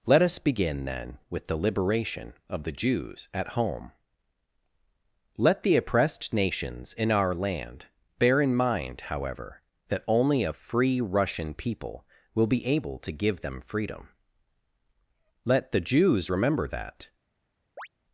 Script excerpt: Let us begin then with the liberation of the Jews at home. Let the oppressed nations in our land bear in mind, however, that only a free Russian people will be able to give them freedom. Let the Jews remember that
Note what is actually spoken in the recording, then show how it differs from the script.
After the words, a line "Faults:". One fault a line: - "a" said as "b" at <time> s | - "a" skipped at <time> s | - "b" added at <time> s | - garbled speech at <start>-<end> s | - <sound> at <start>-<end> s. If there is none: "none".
Let us begin then with the liberation of the Jews at home. Let the oppressed nations in our land bear in mind, however, that only a free Russian people will be able to give them freedom. Let the Jews remember that
Faults:
- chirp at 17.8-17.9 s